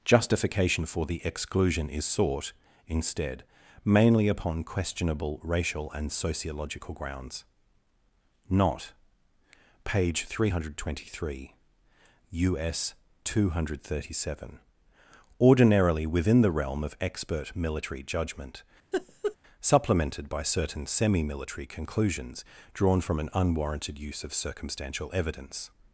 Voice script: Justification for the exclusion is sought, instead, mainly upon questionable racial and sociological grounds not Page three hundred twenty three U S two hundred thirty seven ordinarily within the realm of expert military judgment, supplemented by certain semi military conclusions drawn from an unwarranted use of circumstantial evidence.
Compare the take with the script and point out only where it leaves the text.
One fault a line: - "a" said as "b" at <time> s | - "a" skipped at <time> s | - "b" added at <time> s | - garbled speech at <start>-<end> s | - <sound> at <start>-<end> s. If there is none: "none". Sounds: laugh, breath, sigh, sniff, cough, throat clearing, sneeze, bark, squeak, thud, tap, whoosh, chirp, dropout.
- laugh at 18.9-19.4 s